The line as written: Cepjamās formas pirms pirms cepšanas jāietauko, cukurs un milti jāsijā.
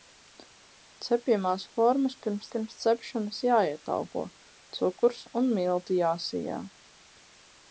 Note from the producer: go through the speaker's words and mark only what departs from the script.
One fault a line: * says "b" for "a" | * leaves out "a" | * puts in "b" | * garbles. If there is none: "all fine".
all fine